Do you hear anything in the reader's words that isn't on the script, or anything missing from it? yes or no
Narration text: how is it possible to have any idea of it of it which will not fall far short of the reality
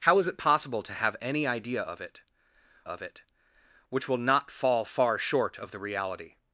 no